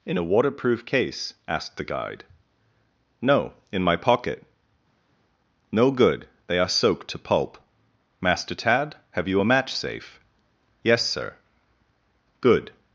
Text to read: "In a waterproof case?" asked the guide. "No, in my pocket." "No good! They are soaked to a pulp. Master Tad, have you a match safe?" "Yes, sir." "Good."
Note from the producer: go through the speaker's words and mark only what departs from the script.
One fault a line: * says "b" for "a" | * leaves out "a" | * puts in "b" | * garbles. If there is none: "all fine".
* leaves out "a"